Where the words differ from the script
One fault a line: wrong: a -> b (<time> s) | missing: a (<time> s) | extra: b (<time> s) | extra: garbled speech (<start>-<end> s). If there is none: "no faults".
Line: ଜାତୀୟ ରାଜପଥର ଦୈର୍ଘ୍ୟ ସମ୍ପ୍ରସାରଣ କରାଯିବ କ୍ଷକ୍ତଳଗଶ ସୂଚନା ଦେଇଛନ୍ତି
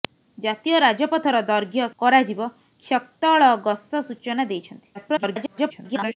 missing: ସମ୍ପ୍ରସାରଣ (1.9 s)
extra: garbled speech (4.9-6.2 s)